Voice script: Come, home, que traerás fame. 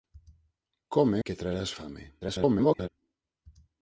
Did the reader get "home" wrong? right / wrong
wrong